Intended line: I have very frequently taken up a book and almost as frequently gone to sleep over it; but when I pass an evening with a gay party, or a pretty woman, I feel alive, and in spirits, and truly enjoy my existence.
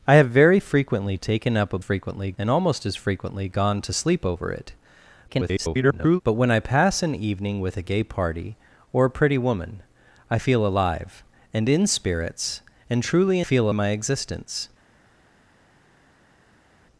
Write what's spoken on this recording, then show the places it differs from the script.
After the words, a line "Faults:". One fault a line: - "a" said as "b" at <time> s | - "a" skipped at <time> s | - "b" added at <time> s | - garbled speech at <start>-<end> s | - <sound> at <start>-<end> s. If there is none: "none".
I have very frequently taken up a frequently and almost as frequently gone to sleep over it; [garbled] but when I pass an evening with a gay party, or a pretty woman, I feel alive, and in spirits, and truly feel my existence.
Faults:
- "book" said as "frequently" at 1.8 s
- garbled speech at 5.3-6.2 s
- "enjoy" said as "feel" at 13.4 s